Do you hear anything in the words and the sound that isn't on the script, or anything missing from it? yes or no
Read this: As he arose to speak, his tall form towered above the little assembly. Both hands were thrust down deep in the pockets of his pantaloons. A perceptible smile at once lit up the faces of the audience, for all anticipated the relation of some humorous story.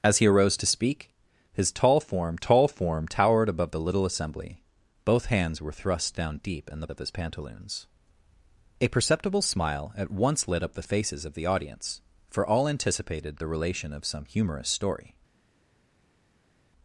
yes